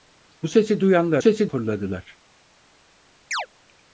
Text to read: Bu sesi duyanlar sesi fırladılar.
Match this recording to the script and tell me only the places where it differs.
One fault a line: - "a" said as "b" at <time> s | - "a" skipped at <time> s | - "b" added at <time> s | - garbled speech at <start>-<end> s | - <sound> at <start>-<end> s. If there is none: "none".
- chirp at 3.3-3.5 s